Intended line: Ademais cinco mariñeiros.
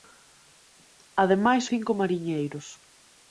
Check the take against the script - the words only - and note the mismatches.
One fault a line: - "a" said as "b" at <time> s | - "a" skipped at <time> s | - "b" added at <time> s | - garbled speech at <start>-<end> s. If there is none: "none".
none